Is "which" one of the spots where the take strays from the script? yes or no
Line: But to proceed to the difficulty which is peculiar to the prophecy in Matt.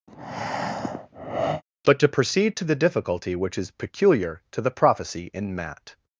no